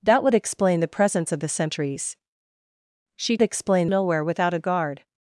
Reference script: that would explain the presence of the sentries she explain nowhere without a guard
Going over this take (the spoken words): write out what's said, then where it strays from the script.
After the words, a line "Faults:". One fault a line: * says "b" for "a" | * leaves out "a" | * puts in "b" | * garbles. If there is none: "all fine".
that would explain the presence of the sentries she explain nowhere without a guard
Faults:
all fine